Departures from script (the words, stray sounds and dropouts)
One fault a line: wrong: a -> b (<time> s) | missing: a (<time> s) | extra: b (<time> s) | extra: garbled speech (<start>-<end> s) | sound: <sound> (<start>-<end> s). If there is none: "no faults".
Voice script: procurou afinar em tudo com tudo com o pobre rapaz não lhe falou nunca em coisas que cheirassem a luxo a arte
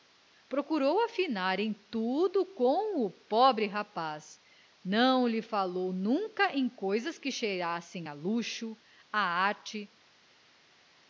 missing: tudo com (3.0 s)